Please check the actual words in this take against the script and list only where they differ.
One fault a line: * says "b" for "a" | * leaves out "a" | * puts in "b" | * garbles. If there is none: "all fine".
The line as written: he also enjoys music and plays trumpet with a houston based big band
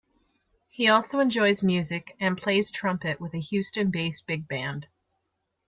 all fine